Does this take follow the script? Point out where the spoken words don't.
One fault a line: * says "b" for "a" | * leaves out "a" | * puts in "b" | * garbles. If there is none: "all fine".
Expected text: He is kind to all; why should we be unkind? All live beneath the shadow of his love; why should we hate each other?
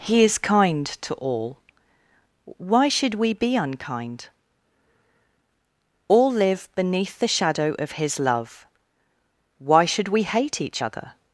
all fine